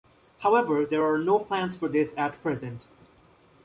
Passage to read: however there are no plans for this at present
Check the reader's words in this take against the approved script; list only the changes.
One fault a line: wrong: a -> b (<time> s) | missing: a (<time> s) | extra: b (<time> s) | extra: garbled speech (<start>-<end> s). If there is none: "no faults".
no faults